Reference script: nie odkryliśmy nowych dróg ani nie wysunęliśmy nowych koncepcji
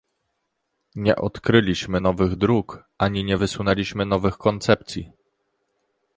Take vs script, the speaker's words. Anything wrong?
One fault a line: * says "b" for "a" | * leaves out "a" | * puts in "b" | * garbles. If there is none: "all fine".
all fine